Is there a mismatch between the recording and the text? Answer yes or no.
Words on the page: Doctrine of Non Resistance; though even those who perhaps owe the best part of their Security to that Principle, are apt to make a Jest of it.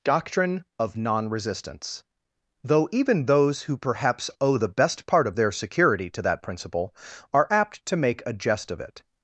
no